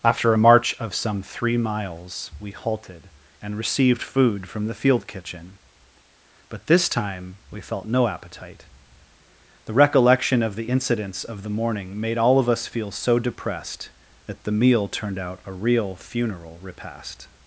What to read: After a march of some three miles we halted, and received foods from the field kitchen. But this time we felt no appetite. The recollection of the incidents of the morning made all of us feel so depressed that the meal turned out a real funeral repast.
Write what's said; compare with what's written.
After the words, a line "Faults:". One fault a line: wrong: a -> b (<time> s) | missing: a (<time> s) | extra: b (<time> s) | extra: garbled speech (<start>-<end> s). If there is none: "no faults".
After a march of some three miles we halted, and received food from the field kitchen. But this time we felt no appetite. The recollection of the incidents of the morning made all of us feel so depressed that the meal turned out a real funeral repast.
Faults:
wrong: foods -> food (4.0 s)